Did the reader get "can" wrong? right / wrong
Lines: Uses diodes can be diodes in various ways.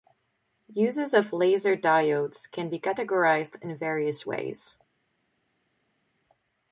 right